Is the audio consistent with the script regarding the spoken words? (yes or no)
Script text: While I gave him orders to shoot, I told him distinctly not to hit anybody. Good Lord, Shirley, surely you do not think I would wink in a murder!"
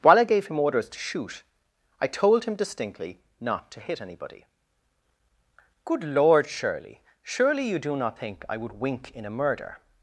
yes